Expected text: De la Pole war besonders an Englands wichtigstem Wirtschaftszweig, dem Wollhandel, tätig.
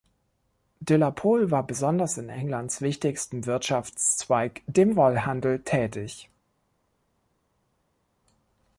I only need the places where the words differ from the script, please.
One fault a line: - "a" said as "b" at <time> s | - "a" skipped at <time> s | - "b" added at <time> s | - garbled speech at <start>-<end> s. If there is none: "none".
- "an" said as "in" at 2.2 s